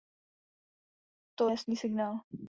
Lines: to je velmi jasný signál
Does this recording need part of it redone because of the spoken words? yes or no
yes